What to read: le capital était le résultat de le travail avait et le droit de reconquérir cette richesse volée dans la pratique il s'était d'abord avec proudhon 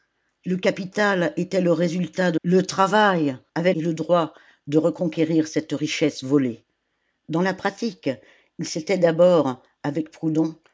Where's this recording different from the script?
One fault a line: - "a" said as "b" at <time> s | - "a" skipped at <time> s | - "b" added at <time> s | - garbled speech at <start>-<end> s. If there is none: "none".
none